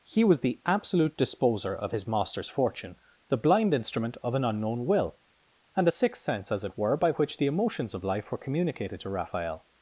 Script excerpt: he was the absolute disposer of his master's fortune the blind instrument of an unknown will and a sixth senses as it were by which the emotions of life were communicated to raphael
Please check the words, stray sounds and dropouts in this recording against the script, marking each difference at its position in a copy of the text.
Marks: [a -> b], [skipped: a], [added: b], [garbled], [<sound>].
he was the absolute disposer of his master's fortune the blind instrument of an unknown will and a sixth [senses -> sense] as it were by which the emotions of life were communicated to raphael